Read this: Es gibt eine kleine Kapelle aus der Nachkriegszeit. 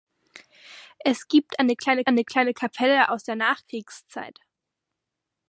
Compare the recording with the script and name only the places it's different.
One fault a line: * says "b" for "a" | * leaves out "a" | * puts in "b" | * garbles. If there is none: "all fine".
* puts in "eine kleine"